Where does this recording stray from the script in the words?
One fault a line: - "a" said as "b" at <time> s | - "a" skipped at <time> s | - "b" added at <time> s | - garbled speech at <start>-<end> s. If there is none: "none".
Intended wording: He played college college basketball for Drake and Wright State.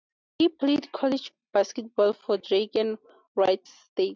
- "college" skipped at 1.3 s